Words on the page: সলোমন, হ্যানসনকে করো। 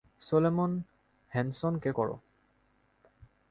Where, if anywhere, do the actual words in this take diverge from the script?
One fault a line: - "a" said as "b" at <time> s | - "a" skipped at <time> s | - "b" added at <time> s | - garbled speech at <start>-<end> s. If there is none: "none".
none